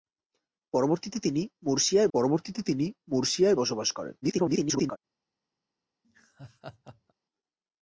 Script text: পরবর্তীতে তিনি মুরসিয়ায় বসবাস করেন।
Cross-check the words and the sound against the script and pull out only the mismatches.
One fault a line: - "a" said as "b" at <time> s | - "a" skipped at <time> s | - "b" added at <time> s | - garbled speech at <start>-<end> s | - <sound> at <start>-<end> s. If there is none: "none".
- "পরবর্তীতে তিনি মুরসিয়ায়" added at 2.1 s
- garbled speech at 4.2-5.0 s
- laugh at 6.0-7.1 s